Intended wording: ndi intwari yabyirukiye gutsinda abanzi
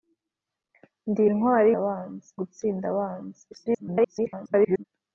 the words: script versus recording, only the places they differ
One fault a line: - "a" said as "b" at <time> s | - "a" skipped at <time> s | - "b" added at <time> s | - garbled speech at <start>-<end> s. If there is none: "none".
- "yabyirukiye" said as "abanzi" at 1.8 s
- garbled speech at 3.5-4.8 s